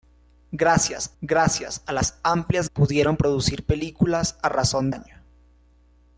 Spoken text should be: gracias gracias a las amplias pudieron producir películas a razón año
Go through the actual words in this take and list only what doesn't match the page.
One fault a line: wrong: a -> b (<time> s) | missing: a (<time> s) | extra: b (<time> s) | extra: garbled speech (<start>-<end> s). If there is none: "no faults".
no faults